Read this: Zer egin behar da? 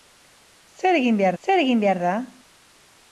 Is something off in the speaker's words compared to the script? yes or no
yes